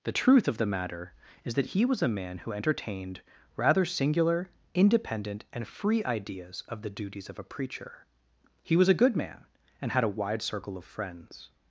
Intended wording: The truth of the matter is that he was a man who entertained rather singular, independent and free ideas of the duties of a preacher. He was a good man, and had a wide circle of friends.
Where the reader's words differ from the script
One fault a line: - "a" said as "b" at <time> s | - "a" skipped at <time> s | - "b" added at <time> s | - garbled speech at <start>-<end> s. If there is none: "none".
none